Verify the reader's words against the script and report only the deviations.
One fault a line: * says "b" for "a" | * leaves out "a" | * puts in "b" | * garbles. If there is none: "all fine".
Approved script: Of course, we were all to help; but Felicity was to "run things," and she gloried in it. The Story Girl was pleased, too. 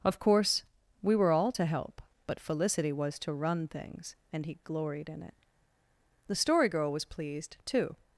* says "he" for "she"